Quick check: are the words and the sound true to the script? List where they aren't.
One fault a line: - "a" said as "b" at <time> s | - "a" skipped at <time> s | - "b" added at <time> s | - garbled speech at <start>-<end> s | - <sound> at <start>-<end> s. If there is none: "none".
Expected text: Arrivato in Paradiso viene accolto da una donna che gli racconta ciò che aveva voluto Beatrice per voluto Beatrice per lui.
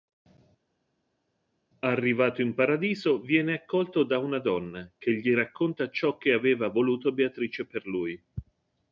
- "voluto Beatrice per" skipped at 7.9 s